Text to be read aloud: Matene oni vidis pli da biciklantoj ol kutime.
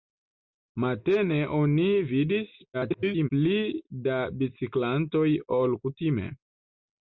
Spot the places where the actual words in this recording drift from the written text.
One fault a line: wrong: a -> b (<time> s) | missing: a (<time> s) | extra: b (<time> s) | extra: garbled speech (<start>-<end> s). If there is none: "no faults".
extra: garbled speech (2.7-3.3 s)